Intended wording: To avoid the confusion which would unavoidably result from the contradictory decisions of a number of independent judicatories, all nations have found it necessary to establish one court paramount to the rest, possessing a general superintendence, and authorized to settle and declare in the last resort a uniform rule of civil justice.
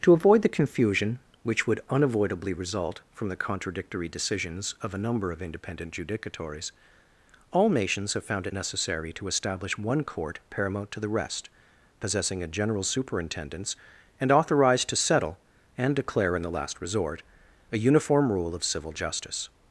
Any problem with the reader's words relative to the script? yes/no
no